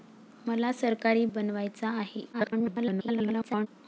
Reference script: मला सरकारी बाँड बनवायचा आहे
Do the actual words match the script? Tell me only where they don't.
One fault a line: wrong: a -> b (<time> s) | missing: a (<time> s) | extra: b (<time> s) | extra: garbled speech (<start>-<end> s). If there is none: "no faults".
missing: बाँड (1.2 s)
extra: garbled speech (2.3-3.7 s)